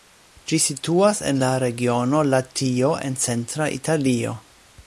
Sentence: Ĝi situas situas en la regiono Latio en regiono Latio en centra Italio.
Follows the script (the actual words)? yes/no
no